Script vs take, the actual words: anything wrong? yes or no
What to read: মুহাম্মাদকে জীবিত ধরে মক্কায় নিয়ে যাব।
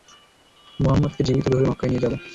no